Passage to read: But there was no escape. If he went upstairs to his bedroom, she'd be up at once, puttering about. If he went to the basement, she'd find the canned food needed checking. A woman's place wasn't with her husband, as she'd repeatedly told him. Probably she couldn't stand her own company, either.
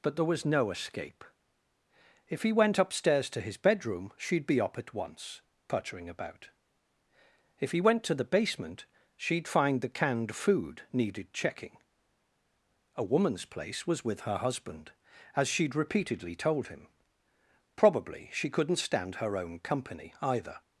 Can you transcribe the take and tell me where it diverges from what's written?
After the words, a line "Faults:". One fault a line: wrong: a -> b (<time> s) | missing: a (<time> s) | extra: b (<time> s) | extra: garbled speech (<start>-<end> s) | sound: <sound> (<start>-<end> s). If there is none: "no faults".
But there was no escape. If he went upstairs to his bedroom, she'd be up at once, puttering about. If he went to the basement, she'd find the canned food needed checking. A woman's place was with her husband, as she'd repeatedly told him. Probably she couldn't stand her own company, either.
Faults:
wrong: wasn't -> was (13.8 s)